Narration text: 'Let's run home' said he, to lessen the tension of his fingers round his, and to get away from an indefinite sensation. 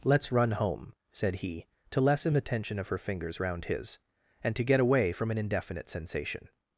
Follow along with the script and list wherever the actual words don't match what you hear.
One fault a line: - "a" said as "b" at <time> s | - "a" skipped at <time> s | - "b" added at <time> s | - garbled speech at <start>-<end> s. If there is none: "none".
- "his" said as "her" at 2.9 s